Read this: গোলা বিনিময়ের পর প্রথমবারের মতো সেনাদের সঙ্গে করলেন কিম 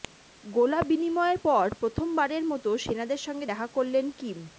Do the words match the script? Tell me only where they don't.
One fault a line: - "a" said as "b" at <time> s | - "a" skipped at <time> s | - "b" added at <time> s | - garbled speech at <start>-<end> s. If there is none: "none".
- "দেখা" added at 3.4 s